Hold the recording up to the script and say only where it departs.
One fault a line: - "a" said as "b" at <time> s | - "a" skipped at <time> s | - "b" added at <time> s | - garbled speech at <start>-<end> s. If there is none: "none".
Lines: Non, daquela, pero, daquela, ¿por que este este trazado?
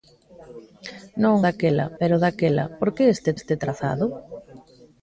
none